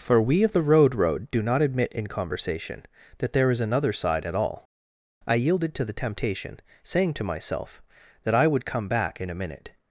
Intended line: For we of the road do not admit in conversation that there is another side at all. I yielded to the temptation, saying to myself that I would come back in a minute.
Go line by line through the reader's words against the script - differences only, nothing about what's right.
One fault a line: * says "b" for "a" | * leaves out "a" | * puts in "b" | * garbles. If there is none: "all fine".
* puts in "road"